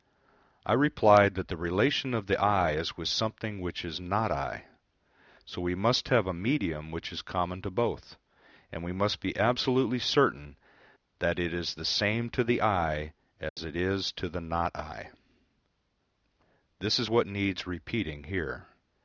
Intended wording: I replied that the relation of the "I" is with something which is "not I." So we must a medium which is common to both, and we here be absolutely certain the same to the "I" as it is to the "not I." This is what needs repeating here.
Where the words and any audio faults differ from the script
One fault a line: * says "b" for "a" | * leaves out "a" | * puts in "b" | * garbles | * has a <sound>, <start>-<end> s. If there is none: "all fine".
* puts in "have"
* says "must" for "here"
* puts in "that it is"
* has a dropout, 13.5-13.6 s